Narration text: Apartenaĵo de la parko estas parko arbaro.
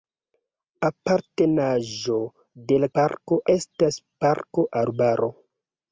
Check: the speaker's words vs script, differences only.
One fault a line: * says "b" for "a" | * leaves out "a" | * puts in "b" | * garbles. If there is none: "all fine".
all fine